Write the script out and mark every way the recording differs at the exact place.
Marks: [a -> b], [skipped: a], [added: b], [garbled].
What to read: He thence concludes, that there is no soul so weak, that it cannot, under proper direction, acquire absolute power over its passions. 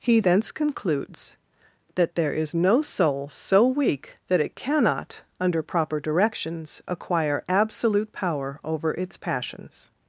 He thence concludes, that there is no soul so weak, that it cannot, under proper [direction, -> directions] acquire absolute power over its passions.